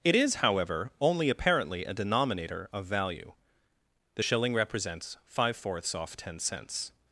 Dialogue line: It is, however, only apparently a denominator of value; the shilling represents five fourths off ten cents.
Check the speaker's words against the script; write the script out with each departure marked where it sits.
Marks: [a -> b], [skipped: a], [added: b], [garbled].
It is, however, only apparently a denominator of value; the shilling represents five fourths off ten cents.